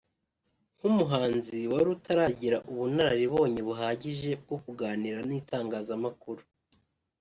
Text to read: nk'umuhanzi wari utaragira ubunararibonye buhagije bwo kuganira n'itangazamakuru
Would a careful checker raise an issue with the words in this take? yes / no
no